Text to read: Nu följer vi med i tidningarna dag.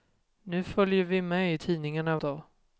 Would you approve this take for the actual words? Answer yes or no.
yes